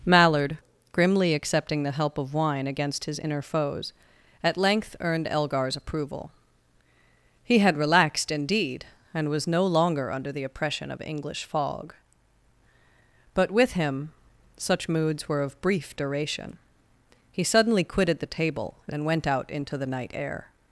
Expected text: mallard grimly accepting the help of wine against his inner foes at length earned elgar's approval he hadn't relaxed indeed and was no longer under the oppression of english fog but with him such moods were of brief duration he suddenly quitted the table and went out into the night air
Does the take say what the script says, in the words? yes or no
no